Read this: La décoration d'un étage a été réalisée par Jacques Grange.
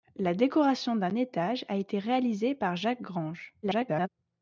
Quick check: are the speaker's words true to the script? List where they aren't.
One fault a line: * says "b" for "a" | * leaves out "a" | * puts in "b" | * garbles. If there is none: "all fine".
* garbles